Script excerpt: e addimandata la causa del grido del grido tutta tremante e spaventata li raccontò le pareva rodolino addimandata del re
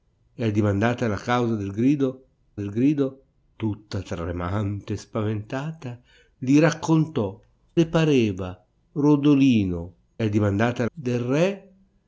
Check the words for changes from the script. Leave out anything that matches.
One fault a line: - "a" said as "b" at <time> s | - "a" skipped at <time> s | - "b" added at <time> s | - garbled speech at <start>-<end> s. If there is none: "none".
none